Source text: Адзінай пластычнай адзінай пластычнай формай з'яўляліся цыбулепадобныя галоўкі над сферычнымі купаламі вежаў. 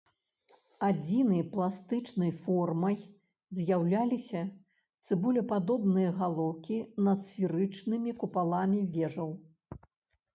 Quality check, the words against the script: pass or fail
fail